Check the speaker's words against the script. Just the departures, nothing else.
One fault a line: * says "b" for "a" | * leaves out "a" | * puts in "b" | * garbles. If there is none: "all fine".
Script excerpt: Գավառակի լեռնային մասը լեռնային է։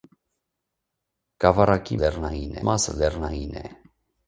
all fine